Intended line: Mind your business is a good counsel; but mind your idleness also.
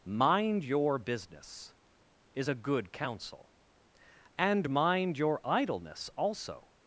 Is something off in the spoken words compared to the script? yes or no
yes